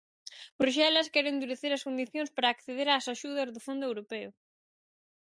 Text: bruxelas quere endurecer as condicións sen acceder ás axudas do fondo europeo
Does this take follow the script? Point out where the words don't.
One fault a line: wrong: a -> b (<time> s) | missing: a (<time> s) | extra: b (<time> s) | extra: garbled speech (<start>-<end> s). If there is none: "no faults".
wrong: sen -> para (2.4 s)